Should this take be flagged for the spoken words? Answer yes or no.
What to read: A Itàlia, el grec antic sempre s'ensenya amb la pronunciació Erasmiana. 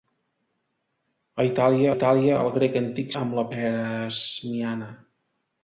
yes